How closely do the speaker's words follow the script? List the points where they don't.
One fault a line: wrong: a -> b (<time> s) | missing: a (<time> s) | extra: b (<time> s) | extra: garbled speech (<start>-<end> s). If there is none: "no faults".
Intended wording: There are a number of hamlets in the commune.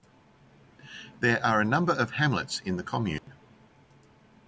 no faults